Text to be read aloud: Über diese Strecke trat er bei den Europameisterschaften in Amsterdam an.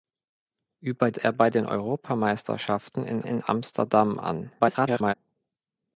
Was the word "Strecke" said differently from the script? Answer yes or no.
yes